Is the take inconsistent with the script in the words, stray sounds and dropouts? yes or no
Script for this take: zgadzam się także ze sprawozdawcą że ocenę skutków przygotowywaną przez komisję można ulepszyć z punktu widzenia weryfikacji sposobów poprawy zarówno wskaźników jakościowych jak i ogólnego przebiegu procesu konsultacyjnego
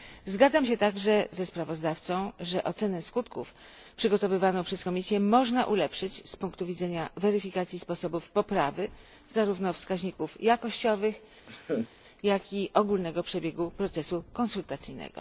yes